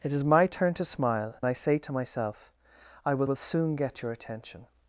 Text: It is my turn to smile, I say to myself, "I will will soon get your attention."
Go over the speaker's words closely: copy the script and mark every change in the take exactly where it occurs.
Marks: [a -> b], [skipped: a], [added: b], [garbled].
It is my turn to smile, I say to myself, "I will will soon get your attention."